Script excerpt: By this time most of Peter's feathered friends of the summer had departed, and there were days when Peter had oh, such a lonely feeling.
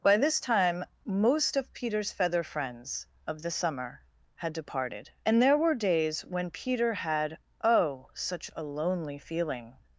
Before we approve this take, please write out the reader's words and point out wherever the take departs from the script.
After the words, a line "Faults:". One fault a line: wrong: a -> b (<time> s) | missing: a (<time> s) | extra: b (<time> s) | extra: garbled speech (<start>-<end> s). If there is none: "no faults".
By this time most of Peter's feather friends of the summer had departed, and there were days when Peter had oh, such a lonely feeling.
Faults:
wrong: feathered -> feather (2.1 s)